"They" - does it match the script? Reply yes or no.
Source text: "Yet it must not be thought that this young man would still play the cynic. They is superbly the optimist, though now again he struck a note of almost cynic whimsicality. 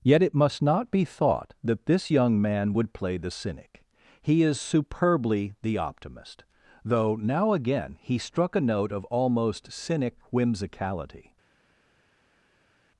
no